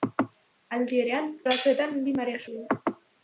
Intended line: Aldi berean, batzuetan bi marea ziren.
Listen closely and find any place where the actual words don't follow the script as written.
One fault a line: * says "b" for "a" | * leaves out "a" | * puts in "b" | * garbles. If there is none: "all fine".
all fine